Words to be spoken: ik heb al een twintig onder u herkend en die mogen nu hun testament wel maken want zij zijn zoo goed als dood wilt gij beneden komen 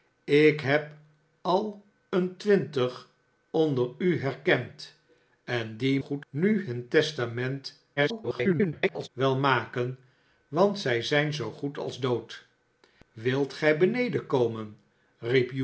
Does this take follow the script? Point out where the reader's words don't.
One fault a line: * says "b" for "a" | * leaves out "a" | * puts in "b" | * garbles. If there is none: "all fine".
* says "goed" for "mogen"
* garbles